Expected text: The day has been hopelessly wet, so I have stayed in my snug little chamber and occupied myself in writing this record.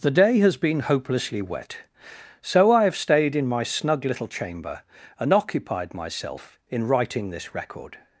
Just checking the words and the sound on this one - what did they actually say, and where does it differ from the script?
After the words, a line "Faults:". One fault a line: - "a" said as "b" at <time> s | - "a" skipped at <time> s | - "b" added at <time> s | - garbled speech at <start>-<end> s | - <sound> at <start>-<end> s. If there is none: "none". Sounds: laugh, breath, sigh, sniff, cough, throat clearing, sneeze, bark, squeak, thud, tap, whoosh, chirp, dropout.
The day has been hopelessly wet, so I have stayed in my snug little chamber and occupied myself in writing this record.
Faults:
none